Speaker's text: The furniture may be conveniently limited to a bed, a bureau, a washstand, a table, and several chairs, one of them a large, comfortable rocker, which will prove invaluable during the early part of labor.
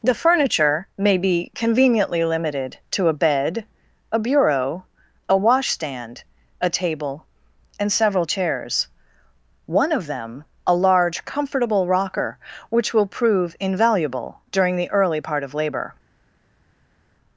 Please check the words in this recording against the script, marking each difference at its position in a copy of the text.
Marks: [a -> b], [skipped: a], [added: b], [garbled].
The furniture may be conveniently limited to a bed, a bureau, a washstand, a table, and several chairs, one of them a large, comfortable rocker, which will prove invaluable during the early part of labor.